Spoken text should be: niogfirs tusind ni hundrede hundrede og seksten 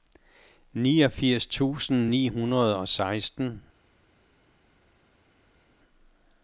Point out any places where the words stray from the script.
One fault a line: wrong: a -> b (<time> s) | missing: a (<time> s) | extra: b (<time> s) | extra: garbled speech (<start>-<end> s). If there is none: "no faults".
missing: hundrede (2.8 s)